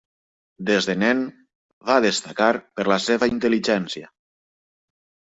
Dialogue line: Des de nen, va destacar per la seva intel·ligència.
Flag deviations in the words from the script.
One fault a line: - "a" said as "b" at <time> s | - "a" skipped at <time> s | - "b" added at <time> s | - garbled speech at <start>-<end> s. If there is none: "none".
none